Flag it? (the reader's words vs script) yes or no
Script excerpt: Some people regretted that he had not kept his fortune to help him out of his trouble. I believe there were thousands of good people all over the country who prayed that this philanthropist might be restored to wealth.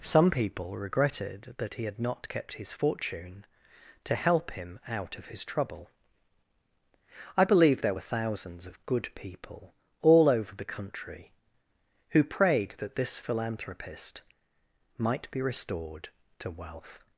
no